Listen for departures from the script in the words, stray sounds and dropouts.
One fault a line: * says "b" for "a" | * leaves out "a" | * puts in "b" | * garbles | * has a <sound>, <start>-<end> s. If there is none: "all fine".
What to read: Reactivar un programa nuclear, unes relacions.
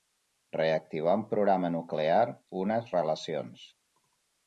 all fine